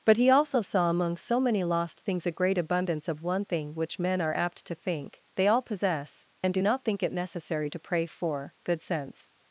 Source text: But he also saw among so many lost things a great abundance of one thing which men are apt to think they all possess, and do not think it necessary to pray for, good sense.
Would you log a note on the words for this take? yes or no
no